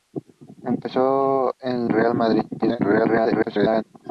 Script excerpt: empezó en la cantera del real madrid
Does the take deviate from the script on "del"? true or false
true